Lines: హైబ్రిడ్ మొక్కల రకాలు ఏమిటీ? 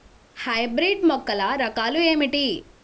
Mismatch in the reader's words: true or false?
false